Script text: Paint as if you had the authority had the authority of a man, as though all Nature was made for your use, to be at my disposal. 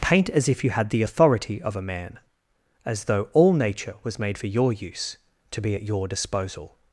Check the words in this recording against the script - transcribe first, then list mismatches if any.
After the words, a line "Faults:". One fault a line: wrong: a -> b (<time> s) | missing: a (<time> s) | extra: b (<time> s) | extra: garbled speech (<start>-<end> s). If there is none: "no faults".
Paint as if you had the authority of a man, as though all Nature was made for your use, to be at your disposal.
Faults:
missing: had the authority (1.6 s)
wrong: my -> your (5.8 s)